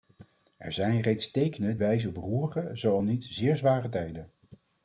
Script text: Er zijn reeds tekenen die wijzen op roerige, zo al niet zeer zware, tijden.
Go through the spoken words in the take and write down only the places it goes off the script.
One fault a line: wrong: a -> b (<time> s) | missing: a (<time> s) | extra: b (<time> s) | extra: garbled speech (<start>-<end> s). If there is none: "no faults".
missing: die (1.8 s)